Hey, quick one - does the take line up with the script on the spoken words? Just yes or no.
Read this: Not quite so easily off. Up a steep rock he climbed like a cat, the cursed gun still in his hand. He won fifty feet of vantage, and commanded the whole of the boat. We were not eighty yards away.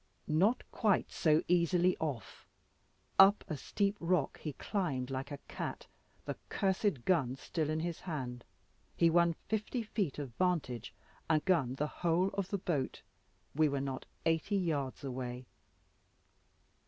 no